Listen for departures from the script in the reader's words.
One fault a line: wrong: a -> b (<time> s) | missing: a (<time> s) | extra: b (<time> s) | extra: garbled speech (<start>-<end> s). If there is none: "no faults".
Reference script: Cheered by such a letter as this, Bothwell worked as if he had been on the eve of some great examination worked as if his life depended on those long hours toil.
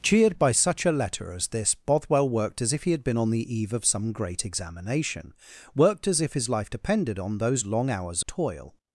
no faults